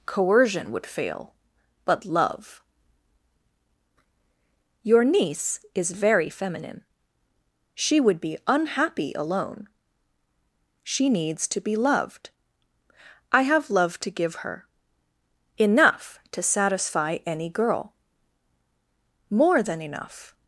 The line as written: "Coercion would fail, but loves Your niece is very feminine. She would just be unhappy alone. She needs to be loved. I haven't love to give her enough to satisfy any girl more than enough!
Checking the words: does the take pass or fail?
fail